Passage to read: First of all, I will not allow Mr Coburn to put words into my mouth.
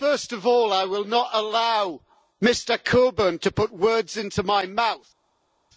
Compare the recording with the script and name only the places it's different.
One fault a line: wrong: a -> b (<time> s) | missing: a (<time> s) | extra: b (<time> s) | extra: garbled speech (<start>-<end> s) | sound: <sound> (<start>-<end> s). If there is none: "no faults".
no faults